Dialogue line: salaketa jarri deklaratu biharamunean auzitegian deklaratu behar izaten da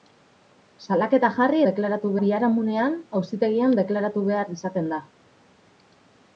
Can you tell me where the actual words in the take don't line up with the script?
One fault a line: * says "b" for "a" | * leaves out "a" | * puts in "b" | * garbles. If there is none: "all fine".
all fine